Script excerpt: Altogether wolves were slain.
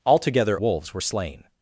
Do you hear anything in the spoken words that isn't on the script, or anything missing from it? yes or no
no